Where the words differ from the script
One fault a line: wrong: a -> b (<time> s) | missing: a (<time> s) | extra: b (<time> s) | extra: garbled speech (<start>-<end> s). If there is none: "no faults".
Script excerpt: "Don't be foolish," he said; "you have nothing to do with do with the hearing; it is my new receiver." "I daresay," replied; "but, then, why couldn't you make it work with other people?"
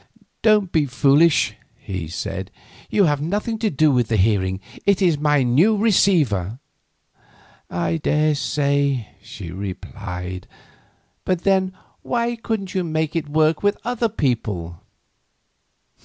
missing: do with (4.1 s)
extra: she (9.2 s)